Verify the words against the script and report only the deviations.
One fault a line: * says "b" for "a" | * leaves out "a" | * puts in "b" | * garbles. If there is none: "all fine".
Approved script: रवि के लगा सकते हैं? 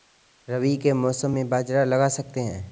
* puts in "मौसम में बाजरा"